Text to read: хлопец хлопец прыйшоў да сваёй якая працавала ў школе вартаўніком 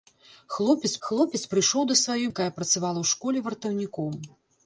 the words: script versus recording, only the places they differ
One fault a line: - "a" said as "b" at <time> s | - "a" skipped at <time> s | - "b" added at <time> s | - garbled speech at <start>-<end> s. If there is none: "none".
none